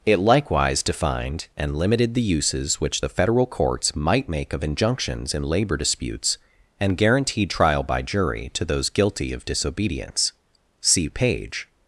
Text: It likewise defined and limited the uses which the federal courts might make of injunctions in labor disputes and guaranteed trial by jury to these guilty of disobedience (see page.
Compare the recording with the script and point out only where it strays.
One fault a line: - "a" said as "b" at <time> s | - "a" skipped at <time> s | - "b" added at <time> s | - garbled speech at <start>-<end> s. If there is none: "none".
- "these" said as "those" at 8.6 s